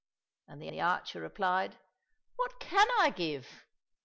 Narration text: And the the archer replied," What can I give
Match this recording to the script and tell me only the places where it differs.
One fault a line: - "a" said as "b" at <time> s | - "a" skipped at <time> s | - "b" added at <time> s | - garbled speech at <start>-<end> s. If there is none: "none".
none